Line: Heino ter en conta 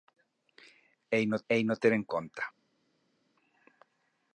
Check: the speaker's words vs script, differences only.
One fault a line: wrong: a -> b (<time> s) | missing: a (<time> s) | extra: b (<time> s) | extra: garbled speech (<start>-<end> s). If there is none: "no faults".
extra: heino (1.5 s)